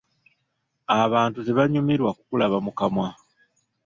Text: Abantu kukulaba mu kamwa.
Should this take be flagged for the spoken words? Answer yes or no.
yes